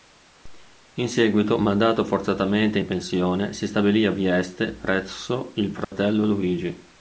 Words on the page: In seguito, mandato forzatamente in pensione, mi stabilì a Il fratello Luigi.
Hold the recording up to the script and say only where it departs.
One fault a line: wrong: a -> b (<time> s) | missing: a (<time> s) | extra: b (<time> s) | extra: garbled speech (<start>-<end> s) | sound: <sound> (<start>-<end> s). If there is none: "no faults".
wrong: mi -> si (3.5 s)
extra: Vieste presso (4.1 s)
sound: dropout (5.8-5.9 s)